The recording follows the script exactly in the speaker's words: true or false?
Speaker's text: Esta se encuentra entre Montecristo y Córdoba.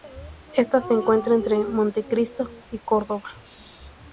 true